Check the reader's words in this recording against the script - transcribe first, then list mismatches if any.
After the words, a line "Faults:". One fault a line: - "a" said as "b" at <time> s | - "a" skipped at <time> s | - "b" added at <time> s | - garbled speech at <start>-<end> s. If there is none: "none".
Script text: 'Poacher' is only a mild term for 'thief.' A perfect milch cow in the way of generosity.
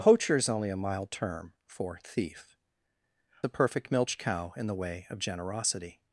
'Poacher' is only a mild term for 'thief.' A perfect milch cow in the way of generosity.
Faults:
none